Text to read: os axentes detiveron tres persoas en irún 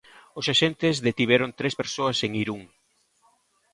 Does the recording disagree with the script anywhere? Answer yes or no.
no